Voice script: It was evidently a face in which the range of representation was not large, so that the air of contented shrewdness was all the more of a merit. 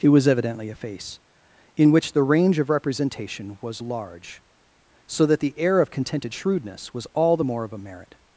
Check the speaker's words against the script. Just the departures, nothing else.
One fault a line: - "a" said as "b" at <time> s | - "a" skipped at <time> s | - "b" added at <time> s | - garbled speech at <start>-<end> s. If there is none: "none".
- "not" skipped at 3.8 s